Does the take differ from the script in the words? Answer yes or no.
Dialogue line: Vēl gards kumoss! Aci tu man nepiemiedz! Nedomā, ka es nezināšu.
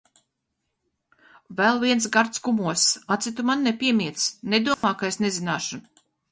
yes